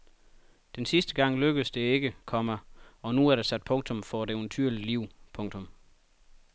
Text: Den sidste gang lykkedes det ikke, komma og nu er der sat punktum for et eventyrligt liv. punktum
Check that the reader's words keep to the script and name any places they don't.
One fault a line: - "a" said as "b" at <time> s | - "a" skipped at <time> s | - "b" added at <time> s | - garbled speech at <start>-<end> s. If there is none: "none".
none